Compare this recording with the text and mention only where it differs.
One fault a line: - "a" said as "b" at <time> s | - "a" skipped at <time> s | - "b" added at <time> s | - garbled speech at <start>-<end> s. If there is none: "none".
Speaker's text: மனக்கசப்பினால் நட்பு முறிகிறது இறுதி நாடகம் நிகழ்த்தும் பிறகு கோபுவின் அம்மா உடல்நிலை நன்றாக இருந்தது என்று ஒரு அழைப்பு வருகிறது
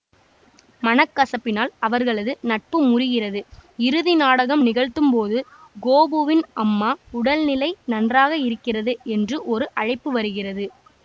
- "அவர்களது" added at 1.8 s
- "பிறகு" said as "போது" at 5.1 s
- "இருந்தது" said as "இருக்கிறது" at 8.5 s